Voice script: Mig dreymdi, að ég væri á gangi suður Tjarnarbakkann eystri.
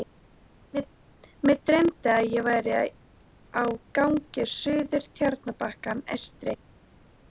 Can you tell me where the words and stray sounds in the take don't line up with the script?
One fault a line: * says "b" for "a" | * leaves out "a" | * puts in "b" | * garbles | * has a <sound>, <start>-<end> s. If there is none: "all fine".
all fine